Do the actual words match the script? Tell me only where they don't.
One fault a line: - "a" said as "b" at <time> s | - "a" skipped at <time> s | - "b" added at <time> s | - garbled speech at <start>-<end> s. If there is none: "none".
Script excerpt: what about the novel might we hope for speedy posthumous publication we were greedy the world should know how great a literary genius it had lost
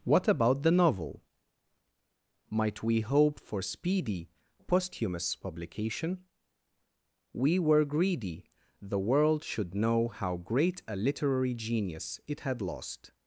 none